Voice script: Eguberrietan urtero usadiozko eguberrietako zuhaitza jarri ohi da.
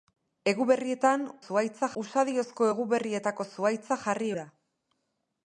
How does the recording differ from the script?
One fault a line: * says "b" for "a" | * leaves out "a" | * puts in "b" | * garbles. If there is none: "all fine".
* says "zuhaitza" for "urtero"
* leaves out "ohi"